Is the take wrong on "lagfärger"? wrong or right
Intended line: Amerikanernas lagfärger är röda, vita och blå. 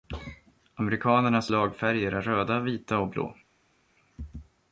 right